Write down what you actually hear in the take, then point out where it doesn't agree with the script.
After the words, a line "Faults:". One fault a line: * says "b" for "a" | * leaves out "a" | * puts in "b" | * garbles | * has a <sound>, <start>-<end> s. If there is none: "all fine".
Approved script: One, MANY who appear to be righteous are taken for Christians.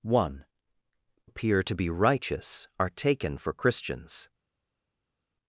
One, Appear to be righteous are taken for Christians.
Faults:
* leaves out "MANY who"